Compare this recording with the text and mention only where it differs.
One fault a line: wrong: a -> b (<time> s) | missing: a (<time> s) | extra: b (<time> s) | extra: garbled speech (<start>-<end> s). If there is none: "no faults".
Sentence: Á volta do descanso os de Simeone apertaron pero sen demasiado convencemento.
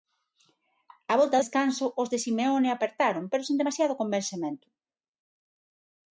missing: do (1.4 s)